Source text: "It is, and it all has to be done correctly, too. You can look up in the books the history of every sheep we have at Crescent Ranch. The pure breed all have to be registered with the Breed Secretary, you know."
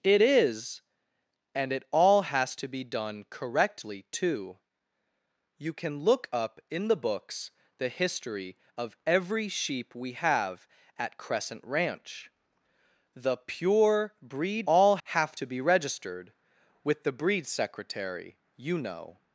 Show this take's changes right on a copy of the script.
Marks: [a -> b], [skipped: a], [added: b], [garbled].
"It is, and it all has to be done correctly, too. You can look up in the books the history of every sheep we have at Crescent Ranch. The pure breed all have to be registered with the Breed Secretary, you know."